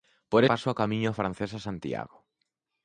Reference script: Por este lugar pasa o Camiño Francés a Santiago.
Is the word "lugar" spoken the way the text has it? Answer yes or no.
no